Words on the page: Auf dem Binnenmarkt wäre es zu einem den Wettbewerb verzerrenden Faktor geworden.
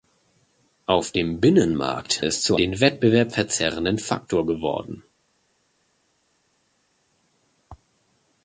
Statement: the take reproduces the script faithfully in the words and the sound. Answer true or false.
false